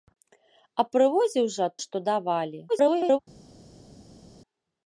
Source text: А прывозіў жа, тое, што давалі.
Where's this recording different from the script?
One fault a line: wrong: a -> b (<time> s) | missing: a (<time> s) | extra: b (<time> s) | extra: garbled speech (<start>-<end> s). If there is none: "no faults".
missing: тое (1.7 s)
extra: garbled speech (2.7-3.2 s)